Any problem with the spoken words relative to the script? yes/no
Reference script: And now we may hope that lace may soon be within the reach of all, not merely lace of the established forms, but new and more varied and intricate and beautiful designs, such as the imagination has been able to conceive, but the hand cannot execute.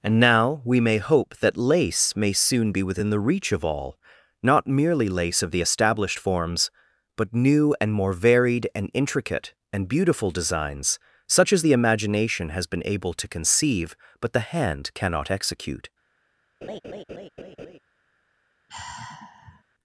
no